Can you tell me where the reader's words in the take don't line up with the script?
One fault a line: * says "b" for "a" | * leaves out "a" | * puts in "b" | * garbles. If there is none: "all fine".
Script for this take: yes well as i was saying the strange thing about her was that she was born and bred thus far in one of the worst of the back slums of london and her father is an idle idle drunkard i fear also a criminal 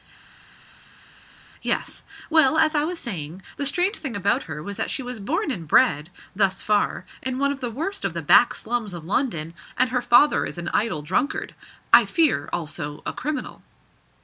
* leaves out "idle"